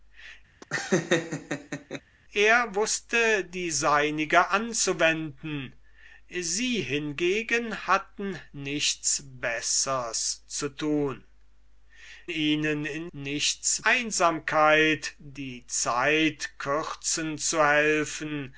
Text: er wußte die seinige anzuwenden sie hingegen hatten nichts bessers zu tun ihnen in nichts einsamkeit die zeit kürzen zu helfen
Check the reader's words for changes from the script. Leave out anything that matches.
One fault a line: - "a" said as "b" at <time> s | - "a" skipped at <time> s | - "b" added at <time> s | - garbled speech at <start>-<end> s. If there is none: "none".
none